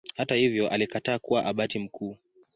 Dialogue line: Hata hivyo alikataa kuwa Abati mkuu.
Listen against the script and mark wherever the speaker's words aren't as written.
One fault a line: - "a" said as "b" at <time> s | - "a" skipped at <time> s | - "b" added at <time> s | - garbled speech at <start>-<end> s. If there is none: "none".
none